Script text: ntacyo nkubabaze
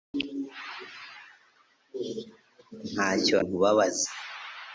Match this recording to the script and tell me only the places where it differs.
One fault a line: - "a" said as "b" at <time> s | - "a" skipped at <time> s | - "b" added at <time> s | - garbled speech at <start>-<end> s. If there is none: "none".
none